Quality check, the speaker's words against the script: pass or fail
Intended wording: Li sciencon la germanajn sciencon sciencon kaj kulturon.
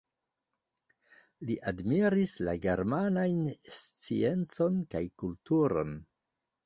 fail